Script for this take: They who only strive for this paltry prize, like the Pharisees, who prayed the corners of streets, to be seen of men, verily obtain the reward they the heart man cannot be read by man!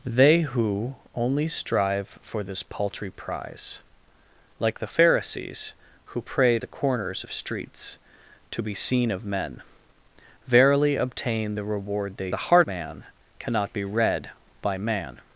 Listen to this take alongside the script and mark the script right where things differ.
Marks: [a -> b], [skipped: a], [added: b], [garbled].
They who only strive for this paltry prize, like the Pharisees, who prayed the corners of streets, to be seen of men, verily obtain the reward they the heart man cannot be read by man!